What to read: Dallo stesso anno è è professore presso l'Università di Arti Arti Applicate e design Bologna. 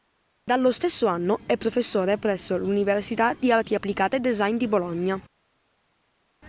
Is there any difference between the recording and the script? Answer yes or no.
yes